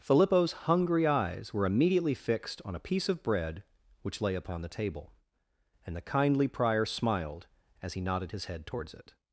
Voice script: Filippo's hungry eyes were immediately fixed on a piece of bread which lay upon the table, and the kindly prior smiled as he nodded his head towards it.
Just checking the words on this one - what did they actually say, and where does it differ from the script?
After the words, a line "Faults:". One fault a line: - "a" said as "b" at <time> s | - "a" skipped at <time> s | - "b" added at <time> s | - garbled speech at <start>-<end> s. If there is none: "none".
Filippo's hungry eyes were immediately fixed on a piece of bread which lay upon the table, and the kindly prior smiled as he nodded his head towards it.
Faults:
none